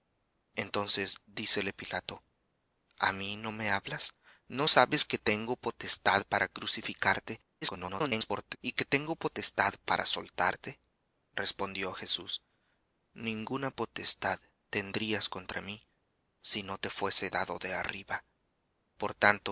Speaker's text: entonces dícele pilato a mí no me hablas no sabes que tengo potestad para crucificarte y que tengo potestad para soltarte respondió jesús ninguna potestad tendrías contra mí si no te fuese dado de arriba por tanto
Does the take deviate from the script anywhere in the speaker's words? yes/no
yes